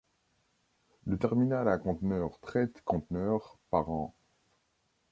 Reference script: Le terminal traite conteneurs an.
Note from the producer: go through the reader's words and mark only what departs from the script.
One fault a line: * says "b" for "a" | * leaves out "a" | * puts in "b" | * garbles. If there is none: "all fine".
* puts in "à conteneurs"
* puts in "par"